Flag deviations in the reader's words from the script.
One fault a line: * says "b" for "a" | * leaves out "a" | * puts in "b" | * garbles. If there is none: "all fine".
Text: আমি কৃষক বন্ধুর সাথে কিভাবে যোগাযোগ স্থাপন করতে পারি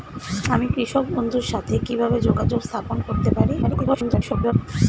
* garbles